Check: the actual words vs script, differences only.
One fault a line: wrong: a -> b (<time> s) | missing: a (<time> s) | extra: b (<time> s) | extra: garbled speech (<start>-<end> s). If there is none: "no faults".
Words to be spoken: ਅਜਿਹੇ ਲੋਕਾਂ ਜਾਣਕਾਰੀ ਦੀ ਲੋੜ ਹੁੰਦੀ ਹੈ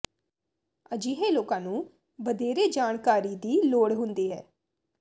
extra: ਨੂੰ ਵਧੇਰੇ (1.6 s)